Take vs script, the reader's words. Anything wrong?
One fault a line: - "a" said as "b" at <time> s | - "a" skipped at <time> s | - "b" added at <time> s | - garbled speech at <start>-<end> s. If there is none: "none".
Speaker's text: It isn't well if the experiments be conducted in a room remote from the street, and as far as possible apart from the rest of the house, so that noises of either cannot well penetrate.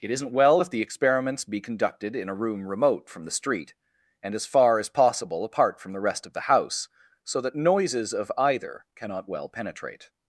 none